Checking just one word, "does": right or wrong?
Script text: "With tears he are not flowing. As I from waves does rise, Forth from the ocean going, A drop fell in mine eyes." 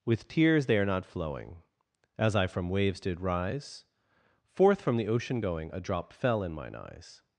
wrong